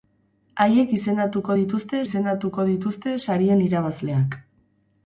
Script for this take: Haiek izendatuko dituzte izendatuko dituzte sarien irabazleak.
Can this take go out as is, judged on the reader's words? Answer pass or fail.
pass